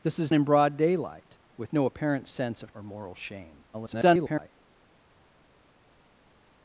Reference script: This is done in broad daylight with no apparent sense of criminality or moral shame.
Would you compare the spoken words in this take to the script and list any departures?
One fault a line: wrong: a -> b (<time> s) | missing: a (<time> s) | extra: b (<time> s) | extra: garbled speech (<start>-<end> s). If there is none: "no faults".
missing: done (0.3 s)
missing: criminality (2.7 s)
extra: garbled speech (3.7-4.5 s)